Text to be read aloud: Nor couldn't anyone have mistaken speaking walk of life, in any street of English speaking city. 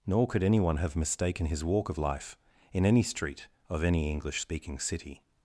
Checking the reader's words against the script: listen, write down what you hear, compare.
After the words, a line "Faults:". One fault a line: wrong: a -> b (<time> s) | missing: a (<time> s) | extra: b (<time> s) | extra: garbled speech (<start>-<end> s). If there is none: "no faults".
Nor could anyone have mistaken his walk of life, in any street of any English speaking city.
Faults:
wrong: couldn't -> could (0.3 s)
wrong: speaking -> his (1.4 s)
extra: any (3.8 s)